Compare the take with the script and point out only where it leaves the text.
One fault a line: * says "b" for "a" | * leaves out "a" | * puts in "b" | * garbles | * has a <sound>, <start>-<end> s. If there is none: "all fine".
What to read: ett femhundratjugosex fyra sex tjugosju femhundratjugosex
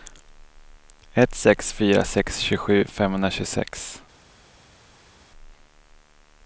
* says "sex" for "femhundratjugosex"